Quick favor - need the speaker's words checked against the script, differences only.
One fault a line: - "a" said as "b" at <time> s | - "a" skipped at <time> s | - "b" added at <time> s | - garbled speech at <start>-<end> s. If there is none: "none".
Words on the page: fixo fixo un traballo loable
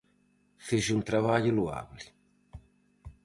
- "fixo" skipped at 0.9 s